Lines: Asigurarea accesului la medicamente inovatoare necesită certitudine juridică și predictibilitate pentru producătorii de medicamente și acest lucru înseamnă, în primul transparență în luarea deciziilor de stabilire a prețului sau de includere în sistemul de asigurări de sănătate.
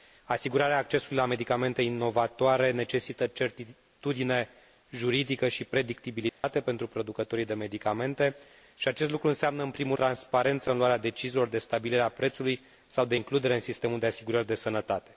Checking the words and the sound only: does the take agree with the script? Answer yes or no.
no